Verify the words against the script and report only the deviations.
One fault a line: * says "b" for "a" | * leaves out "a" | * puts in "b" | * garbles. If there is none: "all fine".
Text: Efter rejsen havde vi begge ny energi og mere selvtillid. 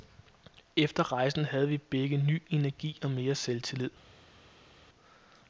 all fine